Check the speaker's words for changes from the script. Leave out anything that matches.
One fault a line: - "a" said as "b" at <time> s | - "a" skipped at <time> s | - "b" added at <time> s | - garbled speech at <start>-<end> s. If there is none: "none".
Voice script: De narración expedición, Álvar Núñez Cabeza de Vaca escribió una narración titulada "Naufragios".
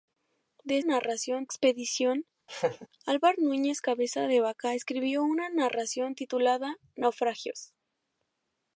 none